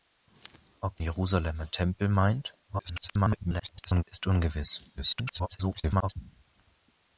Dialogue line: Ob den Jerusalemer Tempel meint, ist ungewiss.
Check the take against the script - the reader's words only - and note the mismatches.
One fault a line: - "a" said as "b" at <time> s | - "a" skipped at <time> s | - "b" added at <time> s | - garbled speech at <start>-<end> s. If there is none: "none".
- "den" skipped at 1.0 s
- garbled speech at 2.7-4.0 s
- garbled speech at 5.0-6.2 s